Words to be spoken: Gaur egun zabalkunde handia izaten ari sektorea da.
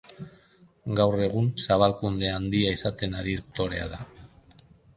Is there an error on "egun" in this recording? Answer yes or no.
no